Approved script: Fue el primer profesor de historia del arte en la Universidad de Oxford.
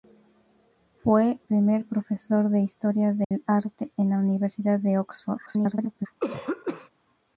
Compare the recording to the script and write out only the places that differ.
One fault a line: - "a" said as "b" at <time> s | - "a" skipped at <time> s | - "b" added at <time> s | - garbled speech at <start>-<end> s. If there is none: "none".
- "el" skipped at 1.4 s
- garbled speech at 5.5-6.1 s